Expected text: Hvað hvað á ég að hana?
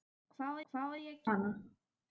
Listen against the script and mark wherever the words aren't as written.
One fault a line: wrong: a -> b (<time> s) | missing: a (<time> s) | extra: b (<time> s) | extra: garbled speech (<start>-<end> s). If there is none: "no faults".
no faults